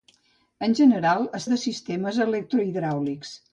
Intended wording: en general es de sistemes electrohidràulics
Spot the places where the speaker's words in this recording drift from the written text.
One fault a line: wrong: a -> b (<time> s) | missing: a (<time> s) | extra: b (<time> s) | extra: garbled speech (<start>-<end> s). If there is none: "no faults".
no faults